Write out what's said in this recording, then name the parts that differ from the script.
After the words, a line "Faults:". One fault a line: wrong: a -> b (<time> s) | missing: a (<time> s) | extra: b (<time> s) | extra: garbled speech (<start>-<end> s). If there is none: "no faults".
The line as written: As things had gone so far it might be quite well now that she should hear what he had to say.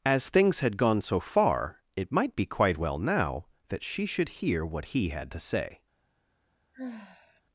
As things had gone so far it might be quite well now that she should hear what he had to say.
Faults:
no faults